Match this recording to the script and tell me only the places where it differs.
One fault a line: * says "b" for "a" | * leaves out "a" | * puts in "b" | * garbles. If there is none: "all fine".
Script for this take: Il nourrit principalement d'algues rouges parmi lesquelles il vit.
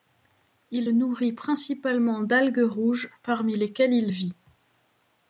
all fine